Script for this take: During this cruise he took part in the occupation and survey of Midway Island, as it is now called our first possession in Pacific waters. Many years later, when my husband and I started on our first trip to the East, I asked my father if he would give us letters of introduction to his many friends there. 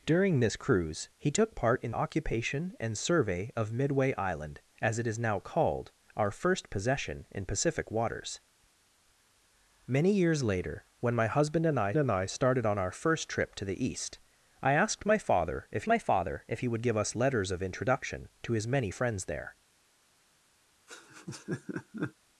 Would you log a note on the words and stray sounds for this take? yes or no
yes